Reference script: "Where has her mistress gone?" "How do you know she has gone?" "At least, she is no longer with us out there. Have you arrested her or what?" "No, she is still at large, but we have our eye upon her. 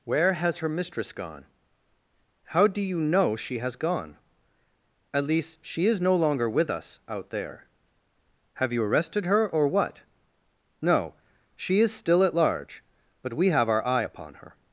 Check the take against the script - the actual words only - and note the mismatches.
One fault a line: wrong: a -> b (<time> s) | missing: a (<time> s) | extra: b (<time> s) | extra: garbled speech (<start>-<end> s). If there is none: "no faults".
no faults